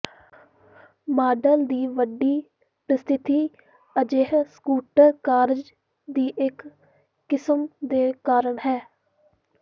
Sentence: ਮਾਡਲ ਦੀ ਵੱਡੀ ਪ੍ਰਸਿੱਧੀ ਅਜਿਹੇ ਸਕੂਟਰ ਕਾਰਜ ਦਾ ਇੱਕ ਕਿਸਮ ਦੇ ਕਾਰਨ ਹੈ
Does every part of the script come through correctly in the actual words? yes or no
no